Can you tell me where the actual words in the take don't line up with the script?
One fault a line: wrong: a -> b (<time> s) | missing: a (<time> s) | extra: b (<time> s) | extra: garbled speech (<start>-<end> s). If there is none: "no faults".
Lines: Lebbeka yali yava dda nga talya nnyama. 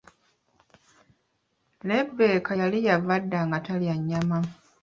no faults